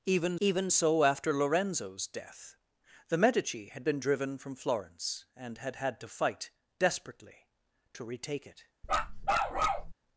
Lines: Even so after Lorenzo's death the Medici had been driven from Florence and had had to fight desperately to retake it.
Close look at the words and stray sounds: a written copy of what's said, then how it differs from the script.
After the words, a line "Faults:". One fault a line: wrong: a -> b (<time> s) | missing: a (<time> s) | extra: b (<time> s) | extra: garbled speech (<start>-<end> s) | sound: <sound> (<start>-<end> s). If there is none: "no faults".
Even even so after Lorenzo's death the Medici had been driven from Florence and had had to fight desperately to retake it.
Faults:
extra: even (0.4 s)
sound: bark (8.8-9.9 s)